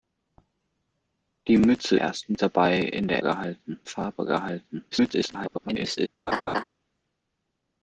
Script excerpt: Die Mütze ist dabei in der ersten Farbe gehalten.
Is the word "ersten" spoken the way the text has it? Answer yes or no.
no